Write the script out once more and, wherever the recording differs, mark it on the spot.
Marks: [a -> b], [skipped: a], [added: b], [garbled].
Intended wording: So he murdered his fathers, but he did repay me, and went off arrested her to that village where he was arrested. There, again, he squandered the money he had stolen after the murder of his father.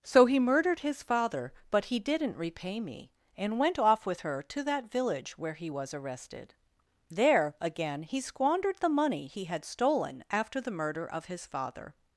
So he murdered his [fathers, -> father] but he [did -> didn't] repay me, and went off [arrested -> with] her to that village where he was arrested. There, again, he squandered the money he had stolen after the murder of his father.